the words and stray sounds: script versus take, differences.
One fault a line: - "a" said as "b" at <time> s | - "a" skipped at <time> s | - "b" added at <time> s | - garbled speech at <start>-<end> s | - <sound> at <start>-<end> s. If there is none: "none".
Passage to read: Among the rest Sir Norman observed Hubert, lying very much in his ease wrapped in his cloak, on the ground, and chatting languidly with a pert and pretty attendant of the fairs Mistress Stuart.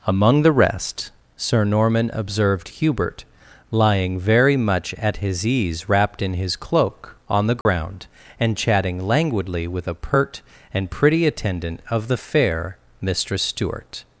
- "in" said as "at" at 5.0 s
- dropout at 7.6-7.7 s
- "fairs" said as "fair" at 12.2 s